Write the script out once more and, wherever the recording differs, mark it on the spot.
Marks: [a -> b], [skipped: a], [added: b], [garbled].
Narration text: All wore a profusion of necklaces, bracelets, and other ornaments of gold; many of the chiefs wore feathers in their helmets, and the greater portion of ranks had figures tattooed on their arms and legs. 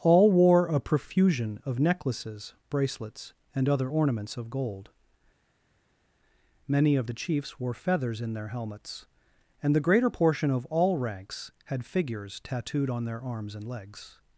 All wore a profusion of necklaces, bracelets, and other ornaments of gold; many of the chiefs wore feathers in their helmets, and the greater portion of [added: all] ranks had figures tattooed on their arms and legs.